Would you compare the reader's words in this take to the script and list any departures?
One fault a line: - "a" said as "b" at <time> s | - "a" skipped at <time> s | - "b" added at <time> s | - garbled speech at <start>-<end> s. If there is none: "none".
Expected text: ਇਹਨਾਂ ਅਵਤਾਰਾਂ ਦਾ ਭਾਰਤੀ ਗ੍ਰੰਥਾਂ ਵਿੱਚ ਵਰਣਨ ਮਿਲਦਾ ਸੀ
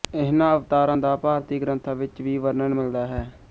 - "ਵੀ" added at 2.2 s
- "ਸੀ" said as "ਹੈ" at 3.1 s